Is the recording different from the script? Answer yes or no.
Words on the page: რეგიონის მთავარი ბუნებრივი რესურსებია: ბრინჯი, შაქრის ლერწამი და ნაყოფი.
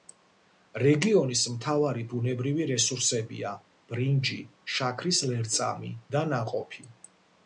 no